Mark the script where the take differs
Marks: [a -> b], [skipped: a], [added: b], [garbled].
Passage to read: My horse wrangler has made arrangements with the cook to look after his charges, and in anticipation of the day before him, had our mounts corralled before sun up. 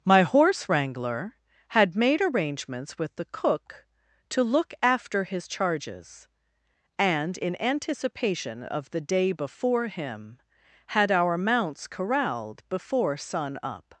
My horse wrangler [has -> had] made arrangements with the cook to look after his charges, and in anticipation of the day before him, had our mounts corralled before sun up.